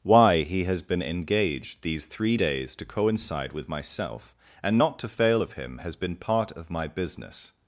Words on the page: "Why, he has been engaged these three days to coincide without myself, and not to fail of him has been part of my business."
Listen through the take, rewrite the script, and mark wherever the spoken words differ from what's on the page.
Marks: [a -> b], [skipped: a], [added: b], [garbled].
"Why, he has been engaged these three days to coincide [without -> with] myself, and not to fail of him has been part of my business."